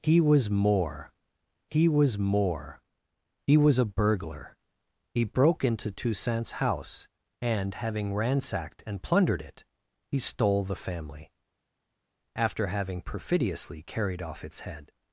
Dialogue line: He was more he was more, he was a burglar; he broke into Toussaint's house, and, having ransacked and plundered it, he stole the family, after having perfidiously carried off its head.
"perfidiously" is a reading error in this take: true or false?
false